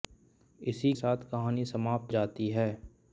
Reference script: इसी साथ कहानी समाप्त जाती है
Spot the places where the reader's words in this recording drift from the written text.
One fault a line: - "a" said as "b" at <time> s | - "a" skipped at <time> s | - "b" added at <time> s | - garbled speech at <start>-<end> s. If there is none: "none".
none